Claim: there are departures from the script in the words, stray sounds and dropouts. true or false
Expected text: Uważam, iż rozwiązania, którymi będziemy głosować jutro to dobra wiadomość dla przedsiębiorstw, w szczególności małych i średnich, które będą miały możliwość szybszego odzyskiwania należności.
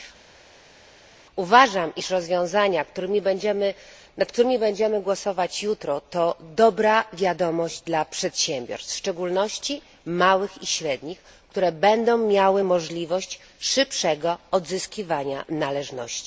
true